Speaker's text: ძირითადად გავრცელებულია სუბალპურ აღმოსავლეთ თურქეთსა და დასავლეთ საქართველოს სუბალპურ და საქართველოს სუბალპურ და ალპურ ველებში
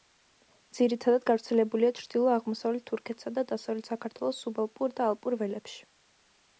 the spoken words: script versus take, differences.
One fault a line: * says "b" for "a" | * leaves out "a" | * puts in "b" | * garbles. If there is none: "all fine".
* says "ჩრდილო" for "სუბალპურ"
* leaves out "საქართველოს სუბალპურ და"